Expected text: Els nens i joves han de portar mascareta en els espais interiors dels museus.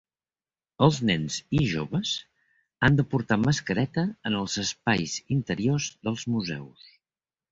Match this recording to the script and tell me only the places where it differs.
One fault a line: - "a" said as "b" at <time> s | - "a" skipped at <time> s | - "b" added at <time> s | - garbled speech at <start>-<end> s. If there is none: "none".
none